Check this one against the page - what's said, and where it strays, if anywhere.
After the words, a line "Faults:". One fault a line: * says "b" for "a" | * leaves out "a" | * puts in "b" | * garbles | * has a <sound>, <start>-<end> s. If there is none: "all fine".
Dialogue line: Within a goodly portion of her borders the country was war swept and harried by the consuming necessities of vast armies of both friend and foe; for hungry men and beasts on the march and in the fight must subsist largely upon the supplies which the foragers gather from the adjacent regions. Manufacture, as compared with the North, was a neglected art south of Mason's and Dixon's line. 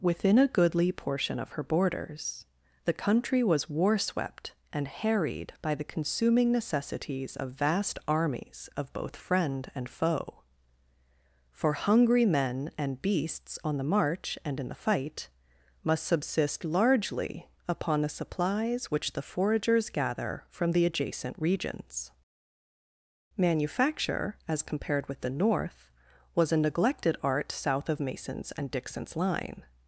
Within a goodly portion of her borders the country was war swept and harried by the consuming necessities of vast armies of both friend and foe; for hungry men and beasts on the march and in the fight must subsist largely upon the supplies which the foragers gather from the adjacent regions. Manufacture, as compared with the North, was a neglected art south of Mason's and Dixon's line.
Faults:
all fine